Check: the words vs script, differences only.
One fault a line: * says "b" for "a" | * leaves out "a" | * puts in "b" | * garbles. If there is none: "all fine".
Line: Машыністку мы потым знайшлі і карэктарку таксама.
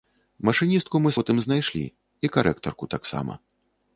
all fine